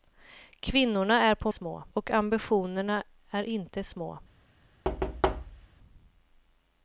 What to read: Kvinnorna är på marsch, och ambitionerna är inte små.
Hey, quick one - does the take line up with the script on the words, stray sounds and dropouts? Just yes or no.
no